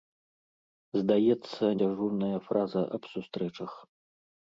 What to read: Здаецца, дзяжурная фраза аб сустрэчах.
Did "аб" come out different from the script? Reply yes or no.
no